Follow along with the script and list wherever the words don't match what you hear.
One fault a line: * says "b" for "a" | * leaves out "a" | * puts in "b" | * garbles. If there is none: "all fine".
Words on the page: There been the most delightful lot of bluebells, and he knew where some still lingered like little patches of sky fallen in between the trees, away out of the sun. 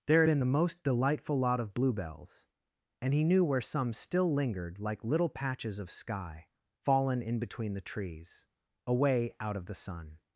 all fine